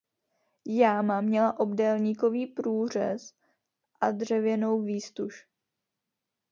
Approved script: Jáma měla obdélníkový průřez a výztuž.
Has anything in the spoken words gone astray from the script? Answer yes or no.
yes